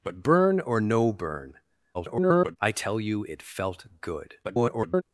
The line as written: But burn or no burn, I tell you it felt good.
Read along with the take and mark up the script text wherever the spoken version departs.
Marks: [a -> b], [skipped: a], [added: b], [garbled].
But burn or no burn, [garbled] I tell you it felt good. [garbled]